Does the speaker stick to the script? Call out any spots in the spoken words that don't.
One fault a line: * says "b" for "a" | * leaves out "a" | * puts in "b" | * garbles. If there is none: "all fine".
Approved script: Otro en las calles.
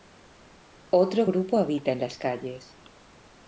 * puts in "grupo habita"